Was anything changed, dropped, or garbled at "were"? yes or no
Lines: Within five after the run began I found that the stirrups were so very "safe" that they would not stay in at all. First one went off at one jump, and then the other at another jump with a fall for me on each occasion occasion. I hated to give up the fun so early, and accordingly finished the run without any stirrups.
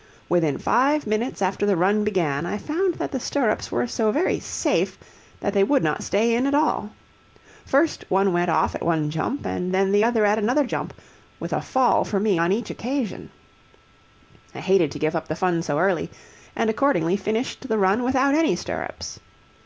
no